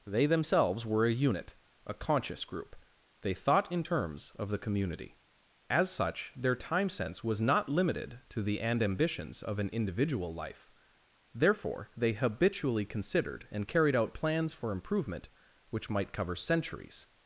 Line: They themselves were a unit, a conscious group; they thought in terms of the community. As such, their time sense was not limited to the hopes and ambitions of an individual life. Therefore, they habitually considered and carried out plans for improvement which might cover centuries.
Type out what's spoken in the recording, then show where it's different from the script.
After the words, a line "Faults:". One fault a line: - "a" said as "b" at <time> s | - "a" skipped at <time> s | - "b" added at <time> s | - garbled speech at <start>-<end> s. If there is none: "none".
They themselves were a unit, a conscious group; they thought in terms of the community. As such, their time sense was not limited to the and ambitions of an individual life. Therefore, they habitually considered and carried out plans for improvement which might cover centuries.
Faults:
- "hopes" skipped at 8.6 s